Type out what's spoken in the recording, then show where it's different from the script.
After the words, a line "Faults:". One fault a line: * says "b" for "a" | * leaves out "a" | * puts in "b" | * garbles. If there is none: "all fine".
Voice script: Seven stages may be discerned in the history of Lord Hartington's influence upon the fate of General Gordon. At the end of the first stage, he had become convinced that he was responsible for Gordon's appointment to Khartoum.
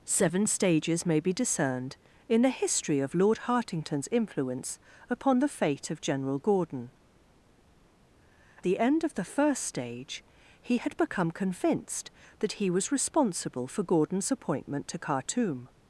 Seven stages may be discerned in the history of Lord Hartington's influence upon the fate of General Gordon. The end of the first stage, he had become convinced that he was responsible for Gordon's appointment to Khartoum.
Faults:
* leaves out "At"